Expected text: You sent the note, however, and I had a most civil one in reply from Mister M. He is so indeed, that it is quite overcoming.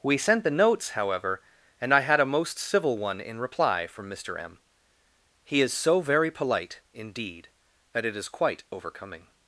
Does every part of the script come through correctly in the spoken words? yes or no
no